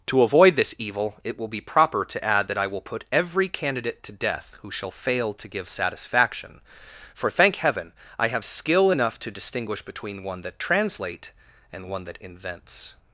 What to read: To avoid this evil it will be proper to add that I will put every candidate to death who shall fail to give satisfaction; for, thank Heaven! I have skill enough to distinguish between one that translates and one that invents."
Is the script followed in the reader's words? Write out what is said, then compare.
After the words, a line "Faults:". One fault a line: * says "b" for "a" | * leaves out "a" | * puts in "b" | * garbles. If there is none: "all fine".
To avoid this evil it will be proper to add that I will put every candidate to death who shall fail to give satisfaction; for, thank Heaven! I have skill enough to distinguish between one that translate and one that invents."
Faults:
* says "translate" for "translates"